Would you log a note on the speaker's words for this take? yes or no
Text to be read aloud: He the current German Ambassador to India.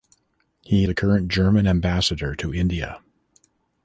no